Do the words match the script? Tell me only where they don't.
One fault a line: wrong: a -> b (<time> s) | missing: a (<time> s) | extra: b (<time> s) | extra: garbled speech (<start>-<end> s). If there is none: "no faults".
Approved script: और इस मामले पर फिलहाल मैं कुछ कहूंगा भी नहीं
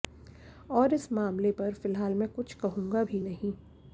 no faults